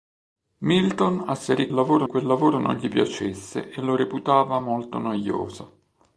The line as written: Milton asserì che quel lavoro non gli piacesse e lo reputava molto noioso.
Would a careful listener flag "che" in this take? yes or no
yes